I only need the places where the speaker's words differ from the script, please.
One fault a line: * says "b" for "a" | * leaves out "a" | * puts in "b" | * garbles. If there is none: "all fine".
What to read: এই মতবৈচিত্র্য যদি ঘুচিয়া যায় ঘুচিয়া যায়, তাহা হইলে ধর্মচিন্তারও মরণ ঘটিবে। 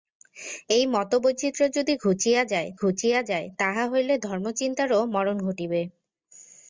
all fine